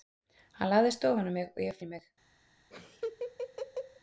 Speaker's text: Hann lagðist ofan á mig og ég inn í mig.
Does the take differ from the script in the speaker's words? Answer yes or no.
no